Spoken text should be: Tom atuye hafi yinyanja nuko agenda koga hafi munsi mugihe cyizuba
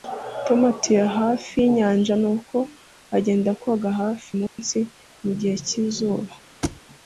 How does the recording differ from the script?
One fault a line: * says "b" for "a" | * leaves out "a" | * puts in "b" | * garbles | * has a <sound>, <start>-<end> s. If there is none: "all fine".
* has a dropout, 4.5-4.6 s
* has a thud, 6.6-6.8 s